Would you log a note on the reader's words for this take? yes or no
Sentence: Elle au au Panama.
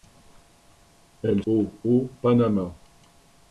no